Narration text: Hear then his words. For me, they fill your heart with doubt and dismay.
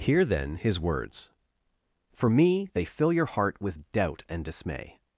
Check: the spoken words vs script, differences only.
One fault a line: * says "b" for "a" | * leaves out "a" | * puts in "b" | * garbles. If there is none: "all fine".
all fine